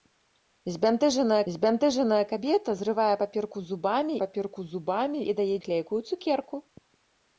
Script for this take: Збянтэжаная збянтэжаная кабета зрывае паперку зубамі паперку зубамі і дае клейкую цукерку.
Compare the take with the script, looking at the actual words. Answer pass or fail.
pass